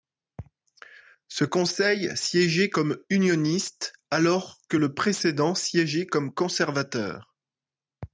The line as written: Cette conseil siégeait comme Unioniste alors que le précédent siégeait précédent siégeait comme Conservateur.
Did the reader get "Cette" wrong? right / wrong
wrong